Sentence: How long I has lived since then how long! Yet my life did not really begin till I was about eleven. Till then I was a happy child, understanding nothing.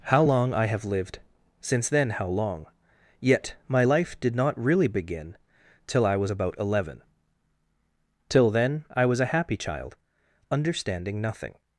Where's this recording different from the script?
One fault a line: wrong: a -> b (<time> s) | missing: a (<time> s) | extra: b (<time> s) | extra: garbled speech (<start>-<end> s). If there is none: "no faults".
wrong: has -> have (0.7 s)